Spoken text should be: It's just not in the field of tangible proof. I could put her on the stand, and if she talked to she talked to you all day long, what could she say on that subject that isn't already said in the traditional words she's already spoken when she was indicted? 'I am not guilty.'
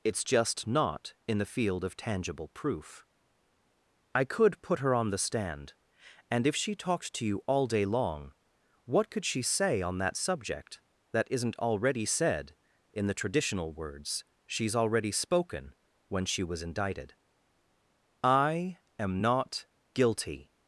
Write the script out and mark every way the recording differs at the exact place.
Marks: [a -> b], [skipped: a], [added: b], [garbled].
It's just not in the field of tangible proof. I could put her on the stand, and if she talked to [skipped: she talked to] you all day long, what could she say on that subject that isn't already said in the traditional words she's already spoken when she was indicted? 'I am not guilty.'